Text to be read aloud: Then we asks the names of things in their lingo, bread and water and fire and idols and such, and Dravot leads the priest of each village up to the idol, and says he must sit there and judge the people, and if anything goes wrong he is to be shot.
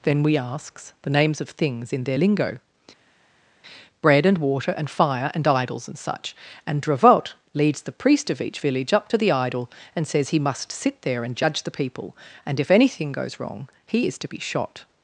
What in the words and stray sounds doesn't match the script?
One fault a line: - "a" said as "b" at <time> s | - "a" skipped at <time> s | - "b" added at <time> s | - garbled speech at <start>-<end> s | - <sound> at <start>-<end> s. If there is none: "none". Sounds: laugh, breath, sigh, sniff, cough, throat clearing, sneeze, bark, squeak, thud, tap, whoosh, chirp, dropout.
none